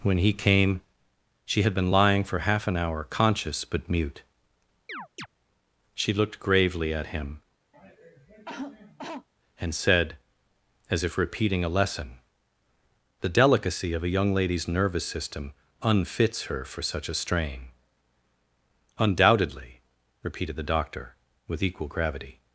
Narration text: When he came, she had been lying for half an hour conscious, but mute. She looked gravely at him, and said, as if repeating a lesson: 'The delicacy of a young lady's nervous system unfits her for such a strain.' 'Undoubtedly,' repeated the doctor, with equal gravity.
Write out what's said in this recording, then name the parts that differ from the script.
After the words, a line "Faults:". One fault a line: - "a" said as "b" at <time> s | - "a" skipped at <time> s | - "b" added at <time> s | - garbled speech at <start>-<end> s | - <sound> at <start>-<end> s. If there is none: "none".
When he came, she had been lying for half an hour conscious, but mute. She looked gravely at him, and said, as if repeating a lesson: 'The delicacy of a young lady's nervous system unfits her for such a strain.' 'Undoubtedly,' repeated the doctor, with equal gravity.
Faults:
- chirp at 4.9-5.3 s
- cough at 7.7-9.3 s